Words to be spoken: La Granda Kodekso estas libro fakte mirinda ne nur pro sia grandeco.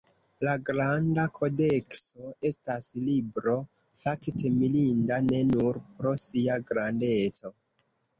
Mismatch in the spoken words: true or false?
false